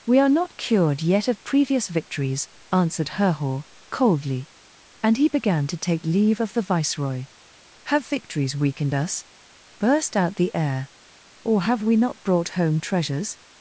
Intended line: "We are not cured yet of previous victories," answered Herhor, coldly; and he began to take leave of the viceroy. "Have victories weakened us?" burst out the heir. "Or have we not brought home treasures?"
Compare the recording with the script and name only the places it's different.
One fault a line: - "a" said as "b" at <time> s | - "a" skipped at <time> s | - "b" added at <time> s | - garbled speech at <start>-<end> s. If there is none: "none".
none